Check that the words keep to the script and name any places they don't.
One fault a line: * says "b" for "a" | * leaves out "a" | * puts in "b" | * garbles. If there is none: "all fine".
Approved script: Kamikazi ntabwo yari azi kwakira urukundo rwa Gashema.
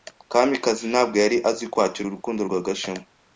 all fine